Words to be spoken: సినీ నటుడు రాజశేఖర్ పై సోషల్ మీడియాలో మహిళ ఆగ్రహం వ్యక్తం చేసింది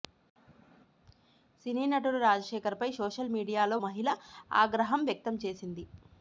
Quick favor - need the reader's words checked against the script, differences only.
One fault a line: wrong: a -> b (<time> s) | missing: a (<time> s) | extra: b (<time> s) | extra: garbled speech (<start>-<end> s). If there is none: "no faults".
no faults